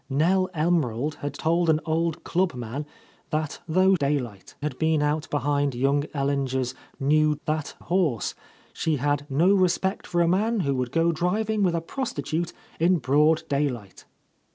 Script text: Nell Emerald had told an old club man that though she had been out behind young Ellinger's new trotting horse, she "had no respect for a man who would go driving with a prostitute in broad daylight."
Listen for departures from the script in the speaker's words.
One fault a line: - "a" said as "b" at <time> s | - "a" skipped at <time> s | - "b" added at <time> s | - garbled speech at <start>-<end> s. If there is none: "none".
- "she" said as "daylight" at 4.0 s
- "trotting" said as "that" at 7.5 s